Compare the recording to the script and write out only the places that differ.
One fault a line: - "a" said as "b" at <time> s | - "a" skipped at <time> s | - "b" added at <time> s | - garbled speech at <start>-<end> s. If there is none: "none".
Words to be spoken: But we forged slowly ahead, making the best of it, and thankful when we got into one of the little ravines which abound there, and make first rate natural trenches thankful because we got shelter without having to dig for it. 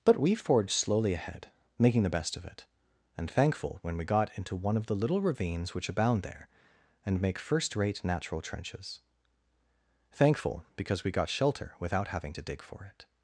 none